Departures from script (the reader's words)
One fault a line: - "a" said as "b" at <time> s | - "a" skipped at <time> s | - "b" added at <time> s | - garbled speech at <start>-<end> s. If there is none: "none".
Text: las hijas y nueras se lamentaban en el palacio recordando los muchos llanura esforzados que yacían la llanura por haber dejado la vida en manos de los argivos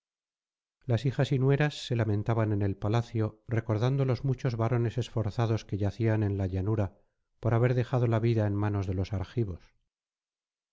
- "llanura" said as "varones" at 4.6 s
- "en" added at 6.2 s